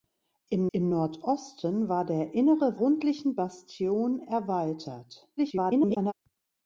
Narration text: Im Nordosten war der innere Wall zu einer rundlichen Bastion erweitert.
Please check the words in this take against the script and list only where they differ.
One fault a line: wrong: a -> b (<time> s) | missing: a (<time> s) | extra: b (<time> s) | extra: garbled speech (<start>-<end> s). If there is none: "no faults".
extra: im (0.7 s)
missing: Wall zu einer (2.8 s)
extra: garbled speech (5.4-6.1 s)